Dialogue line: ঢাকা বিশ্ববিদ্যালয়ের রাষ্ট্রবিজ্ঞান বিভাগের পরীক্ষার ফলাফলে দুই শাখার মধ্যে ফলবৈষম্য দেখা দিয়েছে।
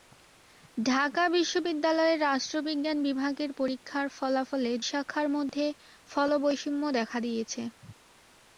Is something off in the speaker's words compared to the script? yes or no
yes